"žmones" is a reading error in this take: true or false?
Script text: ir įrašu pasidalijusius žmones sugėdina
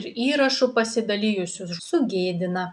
true